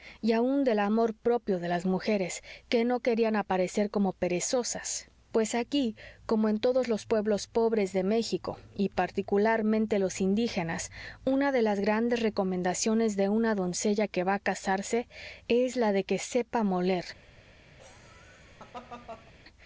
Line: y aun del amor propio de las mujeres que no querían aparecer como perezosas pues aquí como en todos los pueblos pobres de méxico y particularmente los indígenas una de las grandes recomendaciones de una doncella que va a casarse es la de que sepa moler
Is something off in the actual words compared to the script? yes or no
no